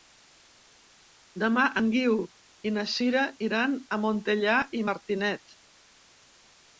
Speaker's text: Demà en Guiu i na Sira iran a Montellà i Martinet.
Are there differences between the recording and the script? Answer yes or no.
no